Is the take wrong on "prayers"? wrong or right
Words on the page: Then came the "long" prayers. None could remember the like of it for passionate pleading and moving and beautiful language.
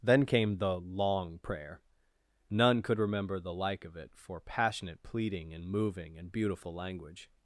wrong